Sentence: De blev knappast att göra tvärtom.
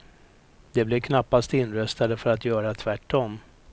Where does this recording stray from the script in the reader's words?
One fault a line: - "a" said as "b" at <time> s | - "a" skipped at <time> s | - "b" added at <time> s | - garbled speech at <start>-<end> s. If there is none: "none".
- "inröstade för" added at 1.5 s